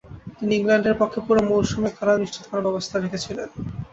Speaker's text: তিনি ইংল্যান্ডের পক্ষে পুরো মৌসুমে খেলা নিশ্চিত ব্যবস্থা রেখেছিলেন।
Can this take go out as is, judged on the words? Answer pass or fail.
fail